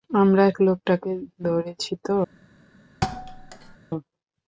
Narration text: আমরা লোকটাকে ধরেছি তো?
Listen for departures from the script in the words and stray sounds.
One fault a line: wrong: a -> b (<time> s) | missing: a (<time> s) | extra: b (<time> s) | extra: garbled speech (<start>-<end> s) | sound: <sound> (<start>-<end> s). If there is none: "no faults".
sound: thud (3.0-3.8 s)